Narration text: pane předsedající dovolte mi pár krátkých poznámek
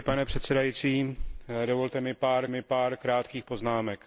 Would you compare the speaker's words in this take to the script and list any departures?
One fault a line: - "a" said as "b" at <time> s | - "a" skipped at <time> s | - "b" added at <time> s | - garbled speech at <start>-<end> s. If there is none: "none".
- "mi pár" added at 2.5 s